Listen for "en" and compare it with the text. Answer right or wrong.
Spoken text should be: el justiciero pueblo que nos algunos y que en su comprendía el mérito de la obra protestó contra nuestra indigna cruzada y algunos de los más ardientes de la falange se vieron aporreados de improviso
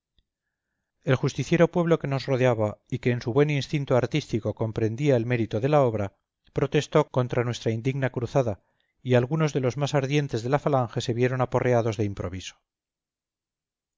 right